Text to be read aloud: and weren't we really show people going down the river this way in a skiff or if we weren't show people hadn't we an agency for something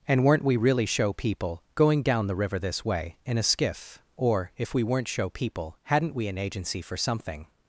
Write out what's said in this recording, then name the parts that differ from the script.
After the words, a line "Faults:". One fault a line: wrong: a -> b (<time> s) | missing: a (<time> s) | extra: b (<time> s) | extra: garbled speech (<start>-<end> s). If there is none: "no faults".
and weren't we really show people going down the river this way in a skiff or if we weren't show people hadn't we an agency for something
Faults:
no faults